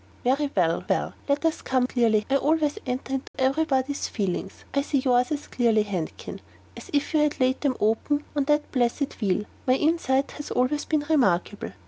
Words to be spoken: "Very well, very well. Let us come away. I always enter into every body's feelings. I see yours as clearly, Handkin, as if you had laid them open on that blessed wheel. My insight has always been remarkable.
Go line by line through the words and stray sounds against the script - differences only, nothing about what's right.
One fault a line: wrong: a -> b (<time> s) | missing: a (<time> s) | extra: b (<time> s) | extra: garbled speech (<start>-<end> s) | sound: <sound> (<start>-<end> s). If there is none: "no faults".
missing: very (0.8 s)
wrong: away -> clearly (1.8 s)
sound: dropout (3.3-3.3 s)